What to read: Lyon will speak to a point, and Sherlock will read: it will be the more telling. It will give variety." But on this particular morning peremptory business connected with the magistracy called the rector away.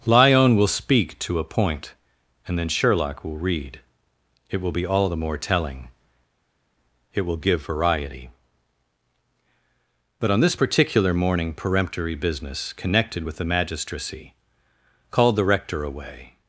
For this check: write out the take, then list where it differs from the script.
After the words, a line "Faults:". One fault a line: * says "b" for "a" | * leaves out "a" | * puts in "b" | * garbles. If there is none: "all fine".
Lyon will speak to a point, and then Sherlock will read: it will be all the more telling. It will give variety." But on this particular morning peremptory business connected with the magistracy called the rector away.
Faults:
* puts in "then"
* puts in "all"